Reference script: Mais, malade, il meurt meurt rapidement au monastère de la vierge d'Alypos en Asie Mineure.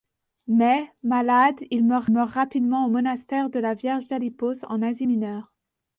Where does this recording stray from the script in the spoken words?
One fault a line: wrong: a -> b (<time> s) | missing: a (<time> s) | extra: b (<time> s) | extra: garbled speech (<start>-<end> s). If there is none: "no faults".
no faults